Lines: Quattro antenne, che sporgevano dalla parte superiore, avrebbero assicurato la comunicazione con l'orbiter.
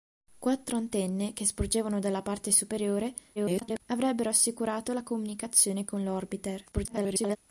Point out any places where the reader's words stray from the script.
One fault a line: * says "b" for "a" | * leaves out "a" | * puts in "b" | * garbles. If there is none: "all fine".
* garbles
* garbles